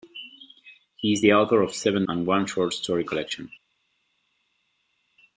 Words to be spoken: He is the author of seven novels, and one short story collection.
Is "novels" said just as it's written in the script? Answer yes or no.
no